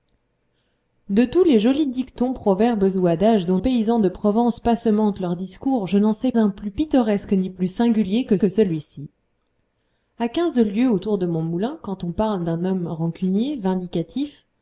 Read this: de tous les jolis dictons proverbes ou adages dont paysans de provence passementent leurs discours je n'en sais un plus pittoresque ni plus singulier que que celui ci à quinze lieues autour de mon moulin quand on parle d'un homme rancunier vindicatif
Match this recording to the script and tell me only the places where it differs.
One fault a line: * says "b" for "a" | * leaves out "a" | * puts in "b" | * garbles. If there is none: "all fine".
all fine